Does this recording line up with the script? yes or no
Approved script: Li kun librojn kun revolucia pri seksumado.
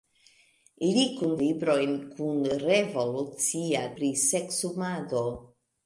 yes